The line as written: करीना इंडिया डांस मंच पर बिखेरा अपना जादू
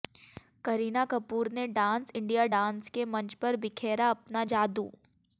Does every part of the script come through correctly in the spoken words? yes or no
no